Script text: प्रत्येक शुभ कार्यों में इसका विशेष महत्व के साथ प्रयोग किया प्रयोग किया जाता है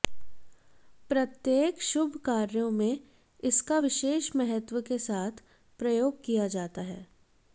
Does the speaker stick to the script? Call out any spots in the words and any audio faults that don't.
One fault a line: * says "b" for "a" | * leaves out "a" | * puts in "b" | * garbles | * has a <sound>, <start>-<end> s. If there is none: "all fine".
* leaves out "प्रयोग किया"